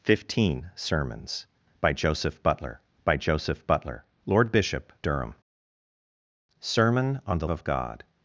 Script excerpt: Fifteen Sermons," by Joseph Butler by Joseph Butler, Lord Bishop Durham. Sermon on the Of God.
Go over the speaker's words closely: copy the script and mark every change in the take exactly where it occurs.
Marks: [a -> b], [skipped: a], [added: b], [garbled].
Fifteen Sermons," by Joseph Butler by Joseph Butler, Lord Bishop Durham. Sermon on the Of God.